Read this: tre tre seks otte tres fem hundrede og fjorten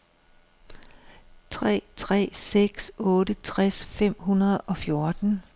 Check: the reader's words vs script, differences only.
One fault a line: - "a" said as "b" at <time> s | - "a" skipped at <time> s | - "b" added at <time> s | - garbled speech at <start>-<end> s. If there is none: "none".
none